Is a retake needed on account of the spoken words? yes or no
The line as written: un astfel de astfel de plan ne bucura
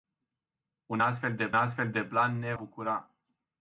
no